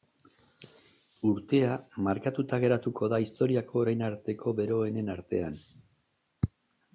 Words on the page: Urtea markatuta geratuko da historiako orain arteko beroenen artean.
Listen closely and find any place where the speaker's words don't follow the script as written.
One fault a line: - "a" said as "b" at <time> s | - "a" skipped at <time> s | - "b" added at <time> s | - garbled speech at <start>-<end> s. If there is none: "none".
none